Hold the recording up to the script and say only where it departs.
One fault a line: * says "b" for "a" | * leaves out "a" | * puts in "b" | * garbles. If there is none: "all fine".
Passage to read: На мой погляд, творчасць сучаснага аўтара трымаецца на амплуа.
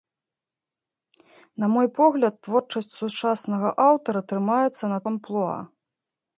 all fine